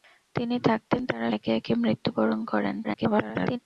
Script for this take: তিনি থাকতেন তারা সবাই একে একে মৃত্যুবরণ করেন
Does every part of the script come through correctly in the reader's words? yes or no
no